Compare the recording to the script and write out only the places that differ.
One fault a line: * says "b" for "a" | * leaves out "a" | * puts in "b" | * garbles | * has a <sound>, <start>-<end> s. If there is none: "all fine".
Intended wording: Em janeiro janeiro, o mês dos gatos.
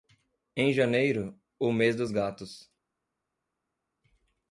* leaves out "janeiro"